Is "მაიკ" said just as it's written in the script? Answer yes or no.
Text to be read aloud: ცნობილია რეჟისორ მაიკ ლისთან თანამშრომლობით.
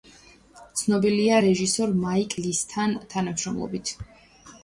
yes